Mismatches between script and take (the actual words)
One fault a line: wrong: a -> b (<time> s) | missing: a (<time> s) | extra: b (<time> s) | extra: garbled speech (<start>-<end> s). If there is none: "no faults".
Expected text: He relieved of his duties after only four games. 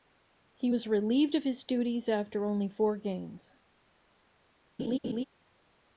extra: was (0.7 s)